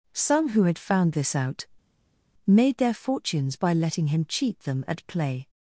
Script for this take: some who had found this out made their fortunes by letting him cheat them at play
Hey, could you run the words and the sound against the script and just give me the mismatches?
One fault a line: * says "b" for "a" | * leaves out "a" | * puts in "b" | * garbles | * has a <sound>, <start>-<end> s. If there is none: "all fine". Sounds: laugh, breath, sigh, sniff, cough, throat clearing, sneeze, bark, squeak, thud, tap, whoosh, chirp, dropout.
all fine